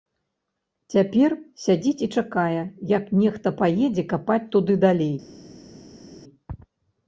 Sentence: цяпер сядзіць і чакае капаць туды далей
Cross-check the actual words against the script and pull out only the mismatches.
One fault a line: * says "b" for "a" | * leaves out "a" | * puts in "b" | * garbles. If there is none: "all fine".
* puts in "як нехта паедзе"